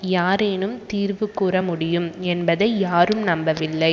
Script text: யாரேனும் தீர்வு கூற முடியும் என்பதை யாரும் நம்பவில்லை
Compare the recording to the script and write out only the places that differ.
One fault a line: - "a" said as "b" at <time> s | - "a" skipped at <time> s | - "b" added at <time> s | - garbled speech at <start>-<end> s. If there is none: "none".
none